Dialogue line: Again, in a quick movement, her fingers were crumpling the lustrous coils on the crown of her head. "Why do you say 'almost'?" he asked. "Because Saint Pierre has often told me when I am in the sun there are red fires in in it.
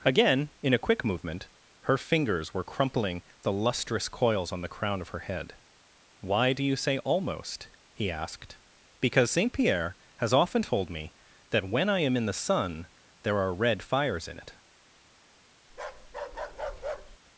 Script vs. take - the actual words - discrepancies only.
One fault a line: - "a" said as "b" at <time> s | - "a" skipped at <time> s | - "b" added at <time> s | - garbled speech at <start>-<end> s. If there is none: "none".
- "that" added at 11.5 s
- "in" skipped at 14.4 s